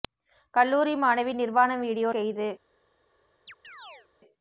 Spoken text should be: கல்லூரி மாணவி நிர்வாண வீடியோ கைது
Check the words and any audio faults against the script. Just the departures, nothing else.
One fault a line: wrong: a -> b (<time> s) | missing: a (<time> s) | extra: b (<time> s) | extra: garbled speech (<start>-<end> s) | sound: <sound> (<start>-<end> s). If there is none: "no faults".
sound: chirp (3.5-4.1 s)